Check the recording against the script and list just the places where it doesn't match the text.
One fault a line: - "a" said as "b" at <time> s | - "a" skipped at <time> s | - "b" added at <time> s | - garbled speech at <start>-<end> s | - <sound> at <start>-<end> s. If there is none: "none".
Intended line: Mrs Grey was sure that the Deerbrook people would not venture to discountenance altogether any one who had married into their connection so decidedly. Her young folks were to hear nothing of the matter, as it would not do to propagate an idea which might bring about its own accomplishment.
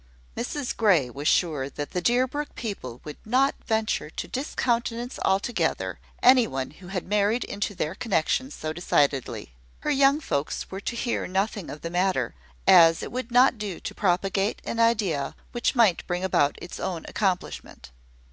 none